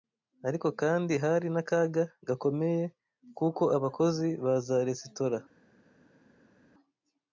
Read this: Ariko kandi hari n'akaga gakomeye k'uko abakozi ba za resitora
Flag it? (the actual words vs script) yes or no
no